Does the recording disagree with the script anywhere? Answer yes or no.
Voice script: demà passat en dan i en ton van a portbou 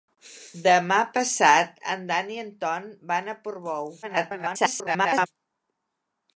yes